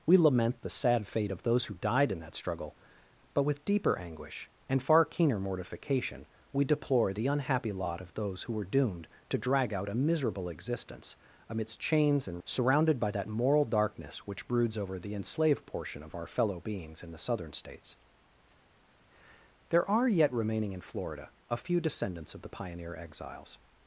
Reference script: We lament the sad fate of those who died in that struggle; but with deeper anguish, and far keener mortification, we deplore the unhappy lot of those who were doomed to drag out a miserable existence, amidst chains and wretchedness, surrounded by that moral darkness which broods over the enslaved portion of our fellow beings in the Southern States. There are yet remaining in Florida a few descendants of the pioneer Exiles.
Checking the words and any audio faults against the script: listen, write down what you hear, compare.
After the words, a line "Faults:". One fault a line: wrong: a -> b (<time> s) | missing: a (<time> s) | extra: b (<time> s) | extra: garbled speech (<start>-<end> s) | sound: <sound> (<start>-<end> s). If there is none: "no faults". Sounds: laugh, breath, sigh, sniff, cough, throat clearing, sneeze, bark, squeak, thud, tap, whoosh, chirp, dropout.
We lament the sad fate of those who died in that struggle; but with deeper anguish, and far keener mortification, we deplore the unhappy lot of those who were doomed to drag out a miserable existence, amidst chains and surrounded by that moral darkness which broods over the enslaved portion of our fellow beings in the Southern States. There are yet remaining in Florida a few descendants of the pioneer Exiles.
Faults:
missing: wretchedness (12.4 s)